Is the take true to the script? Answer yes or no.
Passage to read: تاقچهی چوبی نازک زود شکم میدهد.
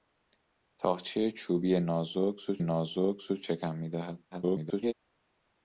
no